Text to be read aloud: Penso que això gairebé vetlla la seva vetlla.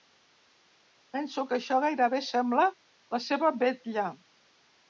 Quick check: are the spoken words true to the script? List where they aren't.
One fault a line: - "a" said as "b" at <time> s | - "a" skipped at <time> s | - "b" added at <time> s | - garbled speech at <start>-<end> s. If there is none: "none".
- "vetlla" said as "sembla" at 2.3 s